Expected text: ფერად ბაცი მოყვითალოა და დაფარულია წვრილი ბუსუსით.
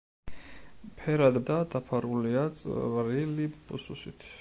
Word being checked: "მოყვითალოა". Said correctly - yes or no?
no